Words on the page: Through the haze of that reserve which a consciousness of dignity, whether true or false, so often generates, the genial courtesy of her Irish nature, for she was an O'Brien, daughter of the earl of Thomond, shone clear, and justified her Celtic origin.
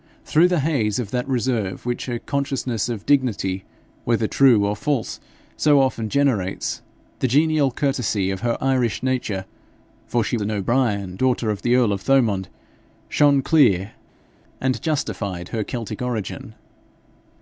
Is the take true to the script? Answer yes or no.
no